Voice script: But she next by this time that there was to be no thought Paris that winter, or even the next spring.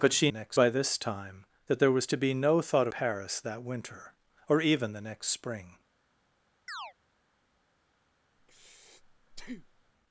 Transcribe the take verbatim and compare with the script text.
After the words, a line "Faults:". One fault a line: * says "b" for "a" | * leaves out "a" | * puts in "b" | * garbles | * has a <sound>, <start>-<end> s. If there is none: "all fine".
But she next by this time that there was to be no thought Paris that winter, or even the next spring.
Faults:
* has a chirp, 6.7-6.9 s
* has a breath, 8.4-9.9 s